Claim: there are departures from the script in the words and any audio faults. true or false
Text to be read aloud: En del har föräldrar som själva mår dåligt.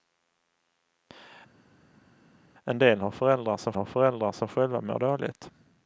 true